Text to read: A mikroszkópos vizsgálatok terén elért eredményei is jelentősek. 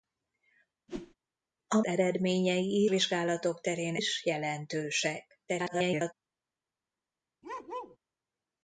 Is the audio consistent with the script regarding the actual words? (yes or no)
no